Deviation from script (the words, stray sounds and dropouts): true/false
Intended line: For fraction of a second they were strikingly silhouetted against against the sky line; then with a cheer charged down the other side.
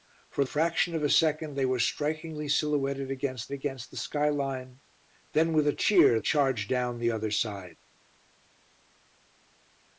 false